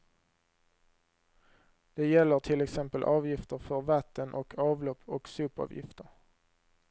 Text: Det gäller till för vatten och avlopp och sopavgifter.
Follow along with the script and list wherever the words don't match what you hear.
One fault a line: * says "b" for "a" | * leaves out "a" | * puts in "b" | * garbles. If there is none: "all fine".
* puts in "exempel avgifter"